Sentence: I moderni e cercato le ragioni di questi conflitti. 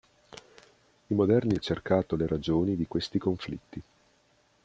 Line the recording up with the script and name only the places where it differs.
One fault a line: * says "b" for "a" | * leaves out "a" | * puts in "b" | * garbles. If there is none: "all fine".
all fine